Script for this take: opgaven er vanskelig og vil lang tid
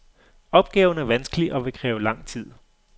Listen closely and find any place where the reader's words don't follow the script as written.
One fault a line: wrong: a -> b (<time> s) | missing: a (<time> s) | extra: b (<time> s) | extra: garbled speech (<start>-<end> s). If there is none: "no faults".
extra: kræve (1.7 s)